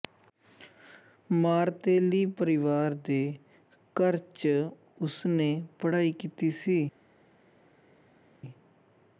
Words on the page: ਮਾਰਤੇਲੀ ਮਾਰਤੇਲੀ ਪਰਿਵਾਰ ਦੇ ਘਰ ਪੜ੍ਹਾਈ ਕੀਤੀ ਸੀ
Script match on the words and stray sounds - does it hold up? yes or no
no